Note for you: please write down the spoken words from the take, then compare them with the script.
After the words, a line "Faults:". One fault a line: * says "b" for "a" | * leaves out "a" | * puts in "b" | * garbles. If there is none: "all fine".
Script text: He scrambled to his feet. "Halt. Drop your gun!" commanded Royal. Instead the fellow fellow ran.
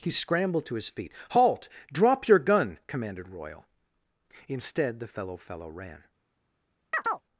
He scrambled to his feet. "Halt. Drop your gun!" commanded Royal. Instead the fellow fellow ran.
Faults:
all fine